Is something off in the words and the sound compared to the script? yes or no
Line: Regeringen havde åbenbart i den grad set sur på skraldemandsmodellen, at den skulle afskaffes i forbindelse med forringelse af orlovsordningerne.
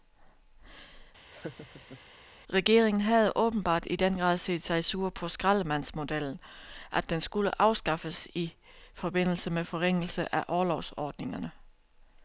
yes